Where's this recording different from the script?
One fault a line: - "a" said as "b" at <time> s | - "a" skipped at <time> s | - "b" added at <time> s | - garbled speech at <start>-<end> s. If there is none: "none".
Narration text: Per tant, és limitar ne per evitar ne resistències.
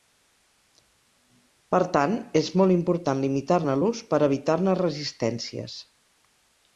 - "molt important" added at 2.6 s
- "l'ús" added at 3.8 s